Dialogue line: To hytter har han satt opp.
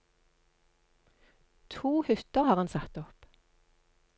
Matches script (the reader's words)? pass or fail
pass